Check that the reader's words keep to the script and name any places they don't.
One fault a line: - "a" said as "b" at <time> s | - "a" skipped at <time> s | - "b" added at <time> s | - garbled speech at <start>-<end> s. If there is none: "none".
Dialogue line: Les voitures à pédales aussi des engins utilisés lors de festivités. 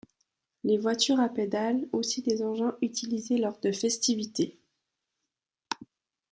none